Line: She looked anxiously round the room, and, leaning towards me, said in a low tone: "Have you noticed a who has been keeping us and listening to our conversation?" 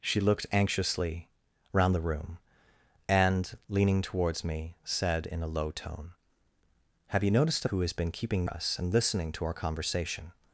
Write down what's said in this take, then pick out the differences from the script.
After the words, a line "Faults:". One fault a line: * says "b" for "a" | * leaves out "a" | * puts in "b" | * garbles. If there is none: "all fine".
She looked anxiously round the room, and, leaning towards me, said in a low tone: "Have you noticed a who has been keeping us and listening to our conversation?"
Faults:
all fine